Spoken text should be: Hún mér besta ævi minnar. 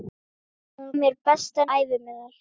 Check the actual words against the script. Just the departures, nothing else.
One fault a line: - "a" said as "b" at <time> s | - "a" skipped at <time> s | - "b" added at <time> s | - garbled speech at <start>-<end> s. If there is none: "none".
none